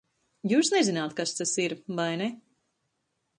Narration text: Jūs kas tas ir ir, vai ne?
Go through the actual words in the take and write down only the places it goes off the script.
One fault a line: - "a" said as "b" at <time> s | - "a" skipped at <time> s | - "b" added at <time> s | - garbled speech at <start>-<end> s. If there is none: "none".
- "nezināt" added at 0.7 s
- "ir" skipped at 1.8 s